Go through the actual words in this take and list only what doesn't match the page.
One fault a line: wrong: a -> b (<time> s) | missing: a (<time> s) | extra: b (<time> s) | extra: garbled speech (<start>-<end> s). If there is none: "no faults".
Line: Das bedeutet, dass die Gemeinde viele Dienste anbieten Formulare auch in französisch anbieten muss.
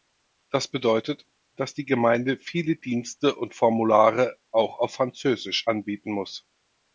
wrong: anbieten -> und (3.3 s)
wrong: in -> auf (4.8 s)